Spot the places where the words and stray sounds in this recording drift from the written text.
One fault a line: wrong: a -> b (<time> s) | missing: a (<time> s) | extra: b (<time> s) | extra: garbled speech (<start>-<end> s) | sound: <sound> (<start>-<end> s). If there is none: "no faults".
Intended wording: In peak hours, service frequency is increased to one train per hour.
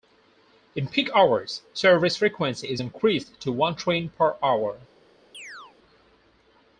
sound: chirp (5.3-5.8 s)